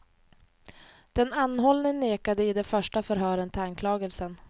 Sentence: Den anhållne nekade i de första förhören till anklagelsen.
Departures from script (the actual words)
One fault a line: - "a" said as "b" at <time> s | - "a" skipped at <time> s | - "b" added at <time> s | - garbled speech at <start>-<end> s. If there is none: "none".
none